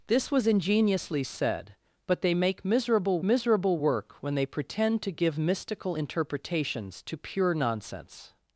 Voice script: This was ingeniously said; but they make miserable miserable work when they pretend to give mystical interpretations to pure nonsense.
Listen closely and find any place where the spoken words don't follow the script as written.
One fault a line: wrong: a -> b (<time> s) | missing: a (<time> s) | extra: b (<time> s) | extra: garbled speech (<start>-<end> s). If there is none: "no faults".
no faults